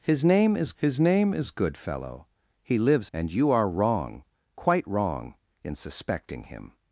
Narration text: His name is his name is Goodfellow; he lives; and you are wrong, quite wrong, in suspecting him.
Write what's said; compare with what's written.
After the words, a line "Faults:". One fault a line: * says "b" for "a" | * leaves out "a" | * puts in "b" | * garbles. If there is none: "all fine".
His name is his name is Goodfellow; he lives; and you are wrong, quite wrong, in suspecting him.
Faults:
all fine